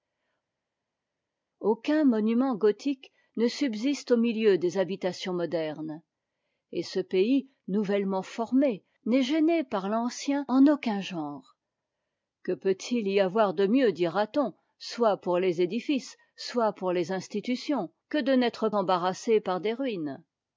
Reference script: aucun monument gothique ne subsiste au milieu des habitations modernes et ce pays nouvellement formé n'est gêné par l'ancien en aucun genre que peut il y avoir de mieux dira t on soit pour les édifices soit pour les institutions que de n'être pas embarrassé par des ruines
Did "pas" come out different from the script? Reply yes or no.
yes